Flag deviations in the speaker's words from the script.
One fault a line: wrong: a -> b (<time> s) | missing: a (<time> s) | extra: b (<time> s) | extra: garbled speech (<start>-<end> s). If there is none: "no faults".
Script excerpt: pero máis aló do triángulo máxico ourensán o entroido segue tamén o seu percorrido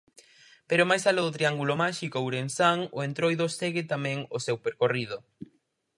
no faults